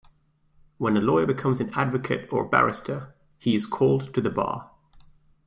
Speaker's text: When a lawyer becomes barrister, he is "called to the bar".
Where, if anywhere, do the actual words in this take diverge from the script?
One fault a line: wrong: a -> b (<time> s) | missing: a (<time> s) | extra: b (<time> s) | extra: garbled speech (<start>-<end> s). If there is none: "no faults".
extra: an advocate or (1.6 s)